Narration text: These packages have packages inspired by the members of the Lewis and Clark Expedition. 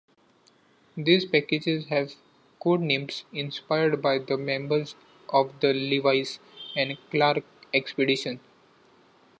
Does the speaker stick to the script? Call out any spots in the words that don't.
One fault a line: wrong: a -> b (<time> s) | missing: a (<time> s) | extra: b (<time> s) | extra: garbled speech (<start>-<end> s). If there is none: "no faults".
wrong: packages -> codenames (2.6 s)